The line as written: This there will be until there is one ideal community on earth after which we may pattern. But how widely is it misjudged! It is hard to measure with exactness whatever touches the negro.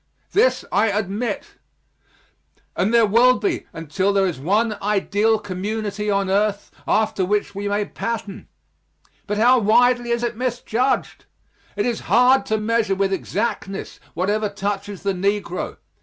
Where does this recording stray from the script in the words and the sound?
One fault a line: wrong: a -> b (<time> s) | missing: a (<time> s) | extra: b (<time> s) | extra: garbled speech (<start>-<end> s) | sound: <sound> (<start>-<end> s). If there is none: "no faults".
extra: I admit And (0.7 s)